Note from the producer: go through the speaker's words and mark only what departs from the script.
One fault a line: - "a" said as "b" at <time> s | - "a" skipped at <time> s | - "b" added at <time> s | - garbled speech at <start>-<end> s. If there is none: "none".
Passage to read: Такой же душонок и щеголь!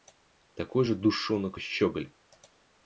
none